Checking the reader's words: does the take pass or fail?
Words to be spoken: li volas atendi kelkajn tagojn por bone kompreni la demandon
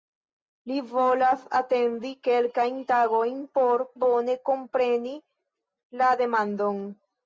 pass